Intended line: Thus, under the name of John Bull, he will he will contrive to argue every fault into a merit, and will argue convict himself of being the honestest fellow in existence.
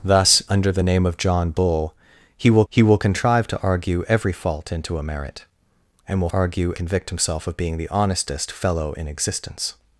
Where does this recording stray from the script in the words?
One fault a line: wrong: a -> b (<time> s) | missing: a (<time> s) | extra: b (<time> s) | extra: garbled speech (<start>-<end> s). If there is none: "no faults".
no faults